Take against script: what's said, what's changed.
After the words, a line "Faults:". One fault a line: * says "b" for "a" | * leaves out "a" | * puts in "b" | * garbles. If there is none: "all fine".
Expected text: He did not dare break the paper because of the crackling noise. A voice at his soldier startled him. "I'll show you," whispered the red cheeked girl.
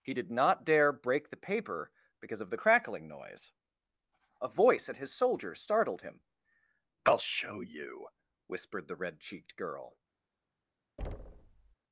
He did not dare break the paper because of the crackling noise. A voice at his soldier startled him. "I'll show you," whispered the red cheeked girl.
Faults:
all fine